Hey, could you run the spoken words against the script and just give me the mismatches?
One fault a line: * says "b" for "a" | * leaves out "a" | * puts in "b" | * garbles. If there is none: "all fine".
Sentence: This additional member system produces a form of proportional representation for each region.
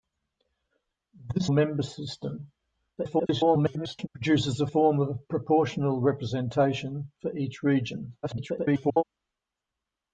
* leaves out "additional"
* garbles
* garbles